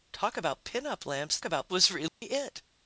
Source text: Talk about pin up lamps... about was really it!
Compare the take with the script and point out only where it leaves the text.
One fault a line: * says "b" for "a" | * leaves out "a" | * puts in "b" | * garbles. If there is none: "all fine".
all fine